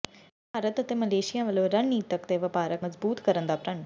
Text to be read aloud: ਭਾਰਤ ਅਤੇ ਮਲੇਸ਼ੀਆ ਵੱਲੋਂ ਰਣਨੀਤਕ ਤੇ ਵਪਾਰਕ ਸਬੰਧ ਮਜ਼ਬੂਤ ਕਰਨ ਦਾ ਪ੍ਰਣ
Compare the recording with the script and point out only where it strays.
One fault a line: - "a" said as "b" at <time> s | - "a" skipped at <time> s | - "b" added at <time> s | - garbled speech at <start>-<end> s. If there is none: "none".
- "ਸਬੰਧ" skipped at 2.9 s